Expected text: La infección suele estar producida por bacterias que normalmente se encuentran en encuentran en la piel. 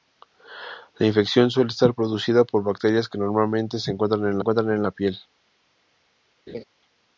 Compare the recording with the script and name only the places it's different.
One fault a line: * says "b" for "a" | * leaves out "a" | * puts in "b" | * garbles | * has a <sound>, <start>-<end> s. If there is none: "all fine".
* has a laugh, 6.5-6.6 s